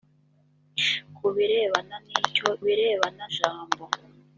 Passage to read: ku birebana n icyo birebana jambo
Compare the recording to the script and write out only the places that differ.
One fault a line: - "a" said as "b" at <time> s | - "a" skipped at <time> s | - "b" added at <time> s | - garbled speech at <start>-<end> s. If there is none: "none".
none